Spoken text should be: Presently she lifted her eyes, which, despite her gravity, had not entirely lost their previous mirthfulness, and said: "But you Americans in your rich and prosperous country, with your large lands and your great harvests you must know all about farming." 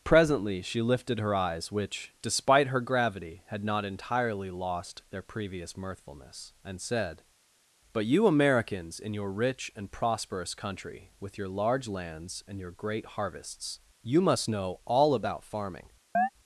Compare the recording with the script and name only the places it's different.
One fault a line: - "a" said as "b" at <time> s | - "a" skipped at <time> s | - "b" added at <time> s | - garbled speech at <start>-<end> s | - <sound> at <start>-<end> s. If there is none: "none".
- chirp at 16.1-16.3 s